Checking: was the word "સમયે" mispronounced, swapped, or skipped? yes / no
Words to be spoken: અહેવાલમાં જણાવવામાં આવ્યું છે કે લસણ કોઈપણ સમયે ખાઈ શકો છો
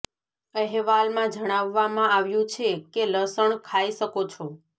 yes